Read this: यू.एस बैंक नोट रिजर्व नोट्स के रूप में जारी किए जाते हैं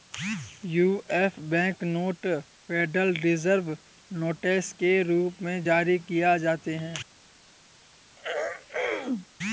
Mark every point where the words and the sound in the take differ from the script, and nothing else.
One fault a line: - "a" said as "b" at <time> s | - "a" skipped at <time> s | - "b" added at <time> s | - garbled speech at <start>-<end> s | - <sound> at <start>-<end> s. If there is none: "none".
- "फेडरल" added at 2.7 s
- throat clearing at 8.2-9.3 s